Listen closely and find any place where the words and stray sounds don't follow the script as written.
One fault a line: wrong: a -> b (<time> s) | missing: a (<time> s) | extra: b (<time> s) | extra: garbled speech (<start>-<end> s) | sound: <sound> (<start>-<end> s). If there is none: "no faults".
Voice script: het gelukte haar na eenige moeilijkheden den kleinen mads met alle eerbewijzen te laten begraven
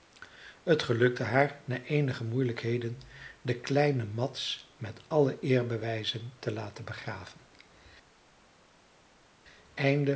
no faults